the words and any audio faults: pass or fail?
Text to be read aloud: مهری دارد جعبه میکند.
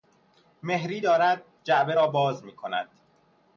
fail